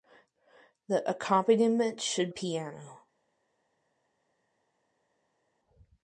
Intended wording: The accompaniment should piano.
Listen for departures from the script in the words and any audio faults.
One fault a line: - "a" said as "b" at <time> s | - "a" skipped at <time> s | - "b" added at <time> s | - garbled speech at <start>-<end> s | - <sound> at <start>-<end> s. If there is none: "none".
none